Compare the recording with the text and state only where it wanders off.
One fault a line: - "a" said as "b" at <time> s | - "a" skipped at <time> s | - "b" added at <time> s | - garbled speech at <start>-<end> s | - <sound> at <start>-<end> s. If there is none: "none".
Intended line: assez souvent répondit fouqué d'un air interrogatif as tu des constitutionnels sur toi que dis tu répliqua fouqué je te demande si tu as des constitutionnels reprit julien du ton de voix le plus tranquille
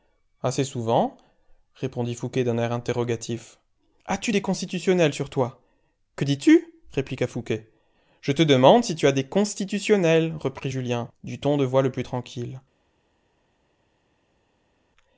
none